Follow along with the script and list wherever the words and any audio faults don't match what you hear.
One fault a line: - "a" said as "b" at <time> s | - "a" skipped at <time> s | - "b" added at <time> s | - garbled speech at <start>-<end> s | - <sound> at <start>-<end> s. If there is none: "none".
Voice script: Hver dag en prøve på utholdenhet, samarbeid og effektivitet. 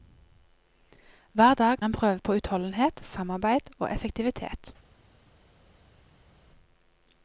none